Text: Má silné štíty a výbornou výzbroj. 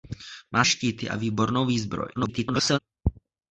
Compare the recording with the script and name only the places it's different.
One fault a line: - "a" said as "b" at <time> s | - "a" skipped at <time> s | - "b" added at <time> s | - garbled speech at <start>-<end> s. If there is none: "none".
- "silné" skipped at 0.7 s
- garbled speech at 2.2-2.8 s